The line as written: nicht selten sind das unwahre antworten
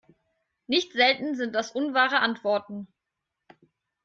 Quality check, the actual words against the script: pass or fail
pass